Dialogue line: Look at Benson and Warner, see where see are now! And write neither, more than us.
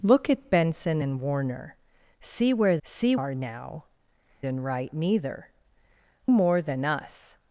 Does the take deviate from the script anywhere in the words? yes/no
no